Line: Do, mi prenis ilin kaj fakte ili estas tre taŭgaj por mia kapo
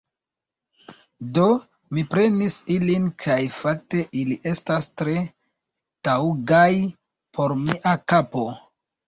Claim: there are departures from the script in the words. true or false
false